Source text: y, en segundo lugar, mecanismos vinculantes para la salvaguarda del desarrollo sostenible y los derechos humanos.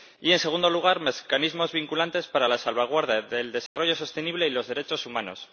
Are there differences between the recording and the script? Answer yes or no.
no